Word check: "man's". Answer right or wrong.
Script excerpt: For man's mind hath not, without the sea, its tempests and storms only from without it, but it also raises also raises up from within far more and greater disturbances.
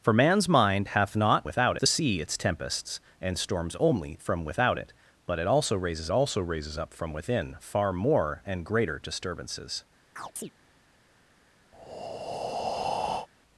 right